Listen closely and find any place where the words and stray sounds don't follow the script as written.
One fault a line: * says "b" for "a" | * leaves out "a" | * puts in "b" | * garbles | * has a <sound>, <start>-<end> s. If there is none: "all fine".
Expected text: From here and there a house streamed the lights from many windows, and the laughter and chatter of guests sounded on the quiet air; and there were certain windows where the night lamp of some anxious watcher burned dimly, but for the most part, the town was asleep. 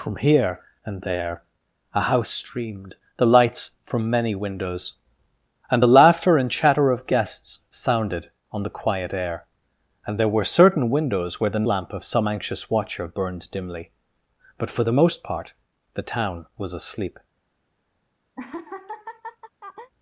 * leaves out "night"
* has a laugh, 18.4-19.9 s